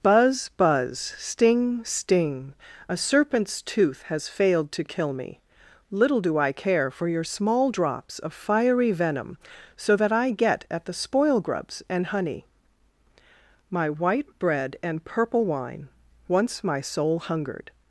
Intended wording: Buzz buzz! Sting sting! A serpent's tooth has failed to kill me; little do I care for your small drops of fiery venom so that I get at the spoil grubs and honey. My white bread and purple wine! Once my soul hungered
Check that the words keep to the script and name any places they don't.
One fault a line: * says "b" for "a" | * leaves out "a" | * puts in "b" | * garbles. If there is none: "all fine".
all fine